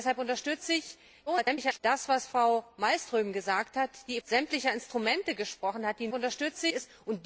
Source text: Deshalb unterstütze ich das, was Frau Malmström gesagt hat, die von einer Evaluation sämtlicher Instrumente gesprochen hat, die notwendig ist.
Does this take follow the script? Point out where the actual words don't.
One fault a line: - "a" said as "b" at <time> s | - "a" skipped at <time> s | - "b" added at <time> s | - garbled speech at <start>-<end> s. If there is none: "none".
- garbled speech at 1.3-1.8 s
- "von einer Evaluation" skipped at 4.2 s
- "notwendig" said as "unterstütze" at 6.1 s